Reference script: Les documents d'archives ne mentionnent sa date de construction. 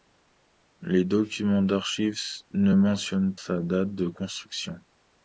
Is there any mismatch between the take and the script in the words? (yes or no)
no